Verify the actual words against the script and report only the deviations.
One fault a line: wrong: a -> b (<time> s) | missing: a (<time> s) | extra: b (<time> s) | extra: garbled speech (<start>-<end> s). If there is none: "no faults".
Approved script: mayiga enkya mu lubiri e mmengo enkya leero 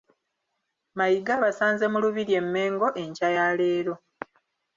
wrong: enkya -> abasanze (1.4 s)
extra: ya (3.4 s)